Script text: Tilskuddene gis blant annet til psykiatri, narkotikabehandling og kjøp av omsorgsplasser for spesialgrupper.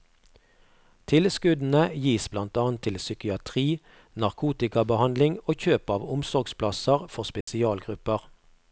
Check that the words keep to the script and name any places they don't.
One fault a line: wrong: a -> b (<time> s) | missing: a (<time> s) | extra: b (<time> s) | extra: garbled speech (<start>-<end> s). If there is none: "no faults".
no faults